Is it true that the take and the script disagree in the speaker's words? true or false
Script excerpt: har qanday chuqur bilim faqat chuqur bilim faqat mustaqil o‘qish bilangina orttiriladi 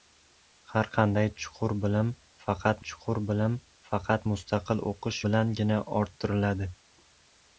false